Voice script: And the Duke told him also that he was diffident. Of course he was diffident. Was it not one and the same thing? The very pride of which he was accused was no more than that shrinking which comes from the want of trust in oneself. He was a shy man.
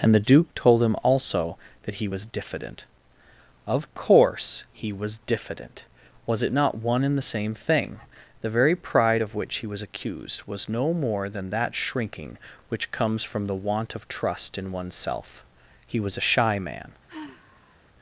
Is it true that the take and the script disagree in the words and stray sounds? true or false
true